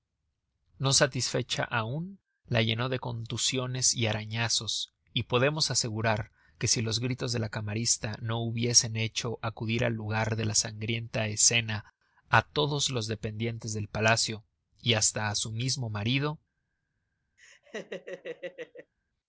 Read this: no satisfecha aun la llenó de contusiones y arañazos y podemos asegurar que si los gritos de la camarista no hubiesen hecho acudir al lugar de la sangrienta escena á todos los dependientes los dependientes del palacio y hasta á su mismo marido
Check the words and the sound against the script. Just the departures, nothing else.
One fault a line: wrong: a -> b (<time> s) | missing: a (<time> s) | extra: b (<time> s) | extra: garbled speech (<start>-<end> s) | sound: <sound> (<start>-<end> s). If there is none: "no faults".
missing: los dependientes (13.7 s)
sound: laugh (17.4-18.9 s)